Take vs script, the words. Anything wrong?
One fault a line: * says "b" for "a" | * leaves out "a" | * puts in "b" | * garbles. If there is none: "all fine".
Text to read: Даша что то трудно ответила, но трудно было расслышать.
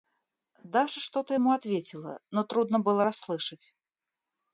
* says "ему" for "трудно"